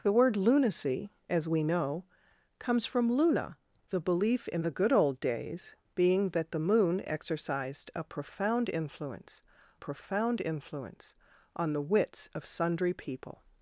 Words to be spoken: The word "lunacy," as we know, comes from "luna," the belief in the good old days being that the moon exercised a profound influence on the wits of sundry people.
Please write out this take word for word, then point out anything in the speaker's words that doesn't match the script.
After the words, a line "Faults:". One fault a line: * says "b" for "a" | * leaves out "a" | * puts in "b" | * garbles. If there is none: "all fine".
The word "lunacy," as we know, comes from "luna," the belief in the good old days being that the moon exercised a profound influence profound influence on the wits of sundry people.
Faults:
* puts in "profound influence"